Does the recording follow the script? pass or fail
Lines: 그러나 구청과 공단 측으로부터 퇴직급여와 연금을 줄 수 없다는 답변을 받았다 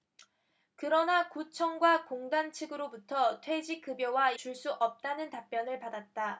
fail